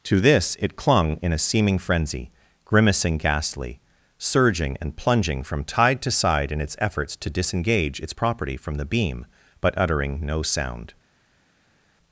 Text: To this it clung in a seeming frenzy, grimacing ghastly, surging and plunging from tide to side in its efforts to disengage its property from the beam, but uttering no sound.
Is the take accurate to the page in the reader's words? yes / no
yes